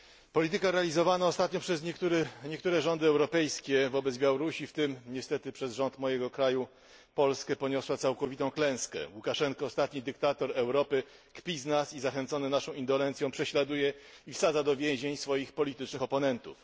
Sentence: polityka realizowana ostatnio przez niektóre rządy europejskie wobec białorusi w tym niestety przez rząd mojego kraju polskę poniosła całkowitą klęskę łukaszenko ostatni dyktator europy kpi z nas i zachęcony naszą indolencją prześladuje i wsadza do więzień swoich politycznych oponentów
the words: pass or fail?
pass